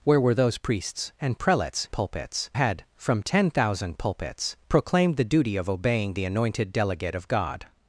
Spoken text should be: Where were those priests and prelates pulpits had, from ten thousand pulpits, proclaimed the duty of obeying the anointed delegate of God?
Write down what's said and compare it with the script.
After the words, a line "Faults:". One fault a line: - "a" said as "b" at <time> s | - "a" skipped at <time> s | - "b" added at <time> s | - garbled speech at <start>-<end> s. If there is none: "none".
Where were those priests and prelates pulpits had, from ten thousand pulpits, proclaimed the duty of obeying the anointed delegate of God?
Faults:
none